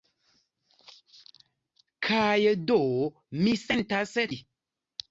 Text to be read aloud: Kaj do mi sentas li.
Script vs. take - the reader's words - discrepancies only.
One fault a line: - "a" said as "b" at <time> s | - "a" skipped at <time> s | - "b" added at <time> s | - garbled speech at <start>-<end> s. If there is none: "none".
none